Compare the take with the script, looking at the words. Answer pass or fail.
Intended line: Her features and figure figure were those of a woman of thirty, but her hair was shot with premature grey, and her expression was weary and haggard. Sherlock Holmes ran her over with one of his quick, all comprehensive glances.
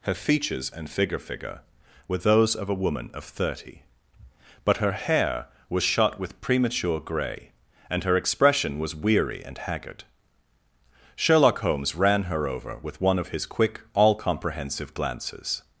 pass